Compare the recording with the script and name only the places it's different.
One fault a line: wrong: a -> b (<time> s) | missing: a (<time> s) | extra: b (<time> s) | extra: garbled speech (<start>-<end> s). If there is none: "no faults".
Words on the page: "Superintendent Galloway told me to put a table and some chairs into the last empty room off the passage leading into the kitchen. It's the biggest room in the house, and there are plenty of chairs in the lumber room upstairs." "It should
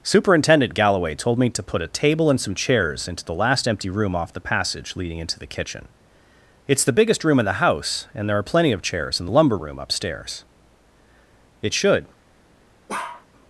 no faults